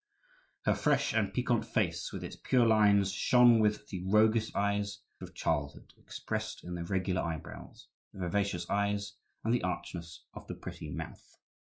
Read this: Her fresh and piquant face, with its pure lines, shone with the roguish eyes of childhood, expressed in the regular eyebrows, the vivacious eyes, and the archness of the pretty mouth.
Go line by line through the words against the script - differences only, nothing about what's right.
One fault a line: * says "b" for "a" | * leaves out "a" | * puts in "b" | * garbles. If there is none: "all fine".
all fine